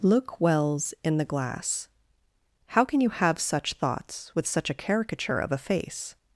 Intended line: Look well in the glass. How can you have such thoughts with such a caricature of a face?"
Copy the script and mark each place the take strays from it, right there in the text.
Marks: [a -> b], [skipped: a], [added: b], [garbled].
Look [well -> wells] in the glass. How can you have such thoughts with such a caricature of a face?"